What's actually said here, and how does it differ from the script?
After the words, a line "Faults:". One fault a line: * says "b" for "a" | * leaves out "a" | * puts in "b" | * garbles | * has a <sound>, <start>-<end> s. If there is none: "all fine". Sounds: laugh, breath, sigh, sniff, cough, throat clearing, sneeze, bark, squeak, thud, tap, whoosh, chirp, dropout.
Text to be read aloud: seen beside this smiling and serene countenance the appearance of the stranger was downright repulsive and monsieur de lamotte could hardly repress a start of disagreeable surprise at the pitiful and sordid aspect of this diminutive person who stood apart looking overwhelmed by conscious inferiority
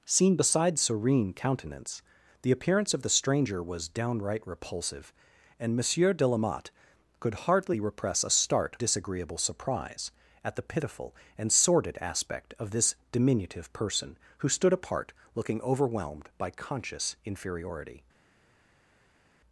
seen beside serene countenance the appearance of the stranger was downright repulsive and monsieur de lamotte could hardly repress a start disagreeable surprise at the pitiful and sordid aspect of this diminutive person who stood apart looking overwhelmed by conscious inferiority
Faults:
* leaves out "this smiling and"
* leaves out "of"